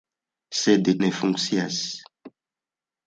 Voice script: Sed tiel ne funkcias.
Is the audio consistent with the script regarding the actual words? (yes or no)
no